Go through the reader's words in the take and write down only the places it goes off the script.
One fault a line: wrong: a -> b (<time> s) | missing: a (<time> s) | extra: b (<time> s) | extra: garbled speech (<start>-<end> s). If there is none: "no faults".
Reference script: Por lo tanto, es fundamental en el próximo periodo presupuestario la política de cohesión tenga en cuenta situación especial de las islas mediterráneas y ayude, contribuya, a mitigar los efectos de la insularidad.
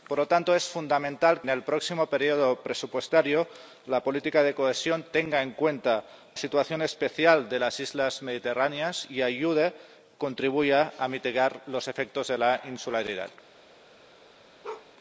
no faults